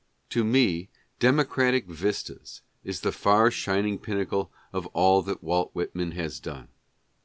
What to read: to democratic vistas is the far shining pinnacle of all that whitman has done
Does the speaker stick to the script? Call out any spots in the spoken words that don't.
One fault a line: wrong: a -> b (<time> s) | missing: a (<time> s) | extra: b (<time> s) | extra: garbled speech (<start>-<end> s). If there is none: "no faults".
extra: me (0.4 s)
extra: walt (5.4 s)